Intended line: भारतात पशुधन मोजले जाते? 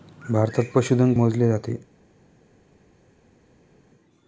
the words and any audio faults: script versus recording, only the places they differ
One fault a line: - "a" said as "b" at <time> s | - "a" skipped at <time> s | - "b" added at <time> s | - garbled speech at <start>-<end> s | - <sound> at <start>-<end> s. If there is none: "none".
none